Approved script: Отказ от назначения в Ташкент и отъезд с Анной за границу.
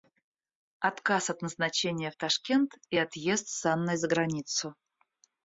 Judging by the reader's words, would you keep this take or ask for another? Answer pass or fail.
pass